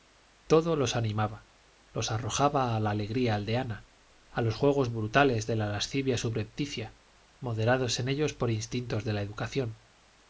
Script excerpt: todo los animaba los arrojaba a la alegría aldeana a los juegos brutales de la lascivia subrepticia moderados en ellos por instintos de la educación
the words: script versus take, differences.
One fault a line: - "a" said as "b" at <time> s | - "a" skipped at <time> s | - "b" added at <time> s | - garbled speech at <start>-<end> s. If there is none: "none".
none